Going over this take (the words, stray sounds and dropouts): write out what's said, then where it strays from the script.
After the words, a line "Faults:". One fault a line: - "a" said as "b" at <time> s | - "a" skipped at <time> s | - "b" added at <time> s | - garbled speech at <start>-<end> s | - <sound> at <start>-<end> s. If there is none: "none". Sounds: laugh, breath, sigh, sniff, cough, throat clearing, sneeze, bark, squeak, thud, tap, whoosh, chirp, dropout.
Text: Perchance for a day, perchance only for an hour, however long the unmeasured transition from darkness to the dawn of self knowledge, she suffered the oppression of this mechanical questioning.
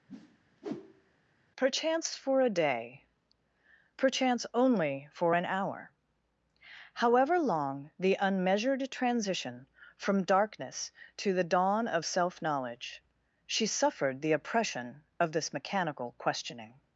Perchance for a day, perchance only for an hour, however long the unmeasured transition from darkness to the dawn of self knowledge, she suffered the oppression of this mechanical questioning.
Faults:
- whoosh at 0.1-1.2 s